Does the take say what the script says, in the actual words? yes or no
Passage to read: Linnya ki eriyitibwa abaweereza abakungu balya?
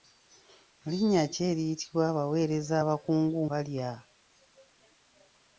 yes